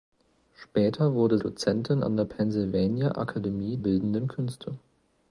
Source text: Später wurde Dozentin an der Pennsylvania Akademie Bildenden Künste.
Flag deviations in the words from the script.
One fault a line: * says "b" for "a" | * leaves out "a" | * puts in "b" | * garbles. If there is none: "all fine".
all fine